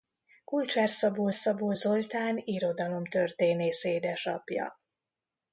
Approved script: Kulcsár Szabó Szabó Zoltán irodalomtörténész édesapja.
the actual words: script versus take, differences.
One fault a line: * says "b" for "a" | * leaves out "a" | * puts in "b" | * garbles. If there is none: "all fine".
all fine